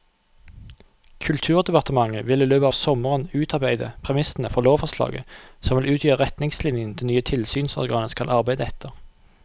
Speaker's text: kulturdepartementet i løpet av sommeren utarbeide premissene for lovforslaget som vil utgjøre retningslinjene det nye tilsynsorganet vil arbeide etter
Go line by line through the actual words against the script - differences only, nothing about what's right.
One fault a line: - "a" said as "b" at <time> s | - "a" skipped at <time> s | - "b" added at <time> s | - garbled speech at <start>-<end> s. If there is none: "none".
- "vil" added at 2.3 s
- "vil" said as "skal" at 8.2 s